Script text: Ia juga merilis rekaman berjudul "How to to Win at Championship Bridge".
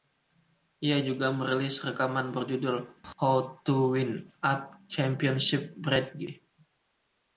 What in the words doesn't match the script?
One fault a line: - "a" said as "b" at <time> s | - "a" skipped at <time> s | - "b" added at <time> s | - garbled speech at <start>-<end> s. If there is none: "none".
- "to" skipped at 3.9 s